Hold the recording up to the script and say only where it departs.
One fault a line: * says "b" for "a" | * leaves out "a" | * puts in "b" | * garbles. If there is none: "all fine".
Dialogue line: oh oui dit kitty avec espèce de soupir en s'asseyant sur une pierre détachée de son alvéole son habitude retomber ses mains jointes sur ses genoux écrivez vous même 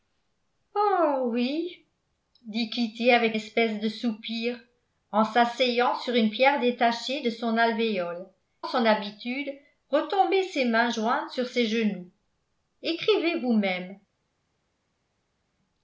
all fine